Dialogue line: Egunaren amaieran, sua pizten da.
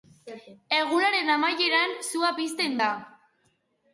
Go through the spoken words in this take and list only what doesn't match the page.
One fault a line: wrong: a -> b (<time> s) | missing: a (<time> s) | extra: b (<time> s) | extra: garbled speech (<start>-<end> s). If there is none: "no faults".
no faults